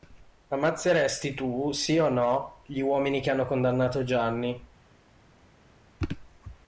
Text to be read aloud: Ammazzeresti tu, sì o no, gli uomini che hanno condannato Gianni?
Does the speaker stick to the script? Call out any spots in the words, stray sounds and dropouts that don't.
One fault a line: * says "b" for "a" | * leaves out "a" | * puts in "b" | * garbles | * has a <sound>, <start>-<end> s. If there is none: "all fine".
all fine